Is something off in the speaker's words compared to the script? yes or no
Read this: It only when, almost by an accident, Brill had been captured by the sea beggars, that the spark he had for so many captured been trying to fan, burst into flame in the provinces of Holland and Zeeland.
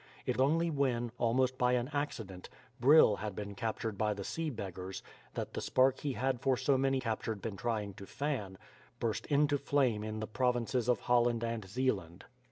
no